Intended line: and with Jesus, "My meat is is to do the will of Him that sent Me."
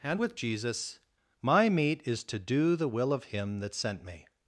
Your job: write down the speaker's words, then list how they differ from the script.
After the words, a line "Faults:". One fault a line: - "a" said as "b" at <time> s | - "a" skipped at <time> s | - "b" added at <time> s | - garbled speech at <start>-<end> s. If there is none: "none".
and with Jesus, "My meat is to do the will of Him that sent Me."
Faults:
- "is" skipped at 2.2 s